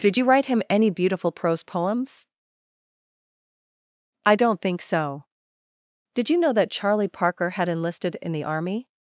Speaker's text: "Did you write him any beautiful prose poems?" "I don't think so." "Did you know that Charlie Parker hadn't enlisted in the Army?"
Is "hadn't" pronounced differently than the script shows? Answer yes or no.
yes